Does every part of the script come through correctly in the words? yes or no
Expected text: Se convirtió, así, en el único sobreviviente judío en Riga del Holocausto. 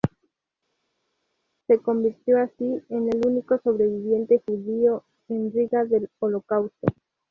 yes